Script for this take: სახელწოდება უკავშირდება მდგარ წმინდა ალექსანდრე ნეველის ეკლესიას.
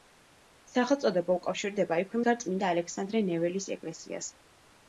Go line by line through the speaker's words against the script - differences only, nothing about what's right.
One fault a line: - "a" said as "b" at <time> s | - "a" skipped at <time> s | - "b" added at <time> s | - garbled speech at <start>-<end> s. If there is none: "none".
- "იქვე" added at 2.0 s